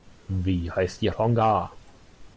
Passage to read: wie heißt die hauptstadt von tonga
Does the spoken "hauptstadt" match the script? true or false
false